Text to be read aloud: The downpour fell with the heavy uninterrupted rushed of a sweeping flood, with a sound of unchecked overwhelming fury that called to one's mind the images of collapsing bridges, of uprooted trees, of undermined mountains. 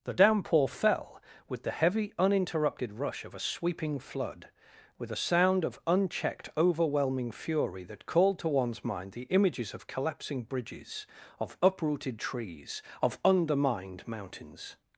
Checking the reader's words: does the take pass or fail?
fail